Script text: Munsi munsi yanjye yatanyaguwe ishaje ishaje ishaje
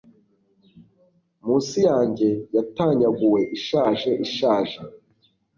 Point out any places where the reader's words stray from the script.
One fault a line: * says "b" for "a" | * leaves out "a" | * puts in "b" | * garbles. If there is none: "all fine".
* leaves out "munsi"
* leaves out "ishaje"